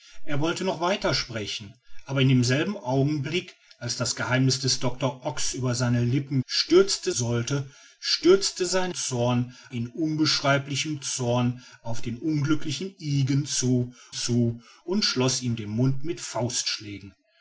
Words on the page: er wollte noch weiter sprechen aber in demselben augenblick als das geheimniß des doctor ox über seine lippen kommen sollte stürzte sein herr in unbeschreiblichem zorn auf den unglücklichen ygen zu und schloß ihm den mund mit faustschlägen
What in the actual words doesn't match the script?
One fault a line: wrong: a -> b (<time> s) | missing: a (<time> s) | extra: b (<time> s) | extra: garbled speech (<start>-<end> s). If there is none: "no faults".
wrong: kommen -> stürzte (6.4 s)
wrong: herr -> zorn (8.9 s)
extra: zu (14.1 s)